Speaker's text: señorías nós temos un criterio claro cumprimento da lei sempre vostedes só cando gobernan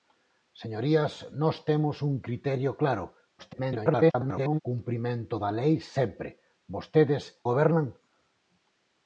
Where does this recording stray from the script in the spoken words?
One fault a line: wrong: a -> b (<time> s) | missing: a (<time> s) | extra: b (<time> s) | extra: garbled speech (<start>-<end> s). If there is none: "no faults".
extra: garbled speech (3.4-4.6 s)
missing: só cando (7.2 s)